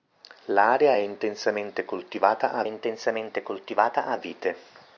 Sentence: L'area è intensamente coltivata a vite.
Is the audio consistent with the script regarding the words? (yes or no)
no